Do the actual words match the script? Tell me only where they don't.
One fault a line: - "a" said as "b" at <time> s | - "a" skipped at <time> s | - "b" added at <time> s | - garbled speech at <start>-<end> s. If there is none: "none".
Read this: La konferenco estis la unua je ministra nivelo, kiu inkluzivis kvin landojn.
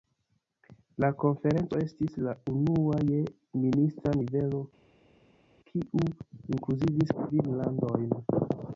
none